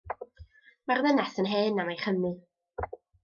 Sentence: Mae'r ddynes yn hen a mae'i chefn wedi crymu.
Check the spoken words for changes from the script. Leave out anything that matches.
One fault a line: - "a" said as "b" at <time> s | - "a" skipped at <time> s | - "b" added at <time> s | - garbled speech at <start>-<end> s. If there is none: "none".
- "chefn wedi" skipped at 2.0 s